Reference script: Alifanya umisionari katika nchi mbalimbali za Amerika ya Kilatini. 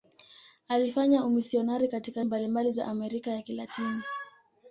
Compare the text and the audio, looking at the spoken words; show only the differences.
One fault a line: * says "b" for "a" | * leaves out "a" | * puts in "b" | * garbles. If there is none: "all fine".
* leaves out "nchi"